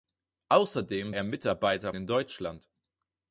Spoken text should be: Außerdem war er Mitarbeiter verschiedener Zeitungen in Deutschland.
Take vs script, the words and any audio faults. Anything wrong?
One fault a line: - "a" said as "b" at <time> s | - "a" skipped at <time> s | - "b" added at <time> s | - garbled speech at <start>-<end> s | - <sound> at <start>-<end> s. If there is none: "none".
- "war" skipped at 1.1 s
- "verschiedener Zeitungen" skipped at 1.9 s